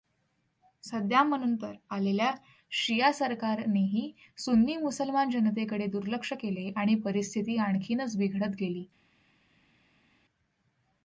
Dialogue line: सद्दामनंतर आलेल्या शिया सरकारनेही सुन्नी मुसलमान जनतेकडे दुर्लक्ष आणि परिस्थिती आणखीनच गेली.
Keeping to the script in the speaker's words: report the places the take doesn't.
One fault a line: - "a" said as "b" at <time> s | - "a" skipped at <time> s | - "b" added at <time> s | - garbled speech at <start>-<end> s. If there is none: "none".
- "केले" added at 6.3 s
- "बिघडत" added at 8.2 s